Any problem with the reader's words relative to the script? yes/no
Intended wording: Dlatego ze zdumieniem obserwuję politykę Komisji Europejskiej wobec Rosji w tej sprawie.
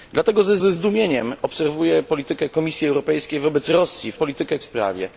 yes